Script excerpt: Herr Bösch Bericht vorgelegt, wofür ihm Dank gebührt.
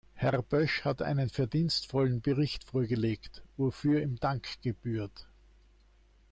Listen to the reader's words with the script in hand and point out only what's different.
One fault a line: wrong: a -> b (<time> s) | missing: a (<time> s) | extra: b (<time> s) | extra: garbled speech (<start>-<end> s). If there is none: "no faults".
extra: hat einen verdienstvollen (0.8 s)